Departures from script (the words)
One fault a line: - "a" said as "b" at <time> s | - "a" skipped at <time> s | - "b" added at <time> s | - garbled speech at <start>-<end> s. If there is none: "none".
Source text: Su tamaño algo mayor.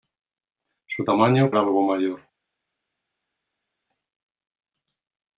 none